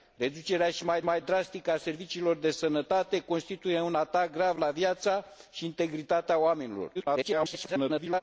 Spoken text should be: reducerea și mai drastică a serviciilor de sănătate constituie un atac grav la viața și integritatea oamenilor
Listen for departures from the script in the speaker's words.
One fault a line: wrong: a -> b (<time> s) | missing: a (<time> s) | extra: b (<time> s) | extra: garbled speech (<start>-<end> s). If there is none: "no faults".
extra: mai (1.0 s)
extra: garbled speech (6.9-8.2 s)